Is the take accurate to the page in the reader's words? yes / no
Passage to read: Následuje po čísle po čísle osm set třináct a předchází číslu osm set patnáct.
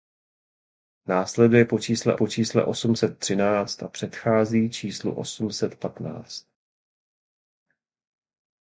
yes